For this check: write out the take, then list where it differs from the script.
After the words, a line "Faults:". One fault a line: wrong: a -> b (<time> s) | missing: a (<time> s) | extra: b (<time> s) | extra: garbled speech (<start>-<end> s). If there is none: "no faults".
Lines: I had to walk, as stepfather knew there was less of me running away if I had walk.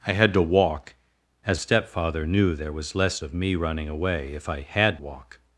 I had to walk, as stepfather knew there was less of me running away if I had walk.
Faults:
no faults